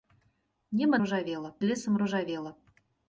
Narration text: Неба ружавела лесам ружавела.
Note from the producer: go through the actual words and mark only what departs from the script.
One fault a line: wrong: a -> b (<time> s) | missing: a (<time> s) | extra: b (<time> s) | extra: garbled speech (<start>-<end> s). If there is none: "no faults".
no faults